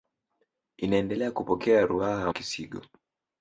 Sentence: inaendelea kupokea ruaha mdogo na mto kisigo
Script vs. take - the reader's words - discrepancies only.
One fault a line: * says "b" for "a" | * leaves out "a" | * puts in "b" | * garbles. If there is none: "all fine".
* leaves out "mdogo na mto"